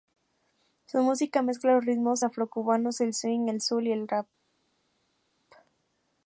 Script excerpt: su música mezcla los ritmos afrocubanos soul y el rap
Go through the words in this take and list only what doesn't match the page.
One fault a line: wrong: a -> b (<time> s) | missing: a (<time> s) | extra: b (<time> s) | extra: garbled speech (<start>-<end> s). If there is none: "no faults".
extra: el swing el (3.0 s)